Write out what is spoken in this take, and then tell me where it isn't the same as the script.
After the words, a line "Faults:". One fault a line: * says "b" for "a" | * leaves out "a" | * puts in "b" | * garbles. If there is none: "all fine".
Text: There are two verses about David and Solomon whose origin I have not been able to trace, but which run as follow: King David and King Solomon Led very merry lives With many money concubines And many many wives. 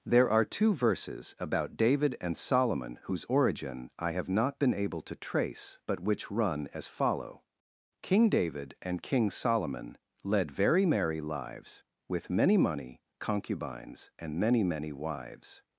There are two verses about David and Solomon whose origin I have not been able to trace, but which run as follow: King David and King Solomon Led very merry lives With many money concubines And many many wives.
Faults:
all fine